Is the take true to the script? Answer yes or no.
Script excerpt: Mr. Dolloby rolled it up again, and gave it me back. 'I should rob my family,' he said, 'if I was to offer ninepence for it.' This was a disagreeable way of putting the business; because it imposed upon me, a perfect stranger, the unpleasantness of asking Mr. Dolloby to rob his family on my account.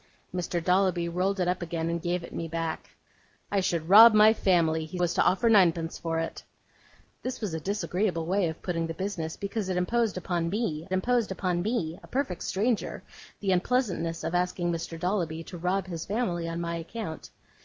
no